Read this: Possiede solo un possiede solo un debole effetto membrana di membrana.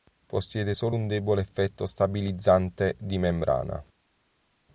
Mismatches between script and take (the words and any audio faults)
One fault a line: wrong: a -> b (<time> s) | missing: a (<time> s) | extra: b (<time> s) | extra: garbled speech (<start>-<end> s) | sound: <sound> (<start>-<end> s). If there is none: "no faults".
missing: possiede solo un (1.1 s)
wrong: membrana -> stabilizzante (1.9 s)